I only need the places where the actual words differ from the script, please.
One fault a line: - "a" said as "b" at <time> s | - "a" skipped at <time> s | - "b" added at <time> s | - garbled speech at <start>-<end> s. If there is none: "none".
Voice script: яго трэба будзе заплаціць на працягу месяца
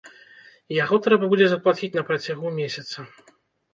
none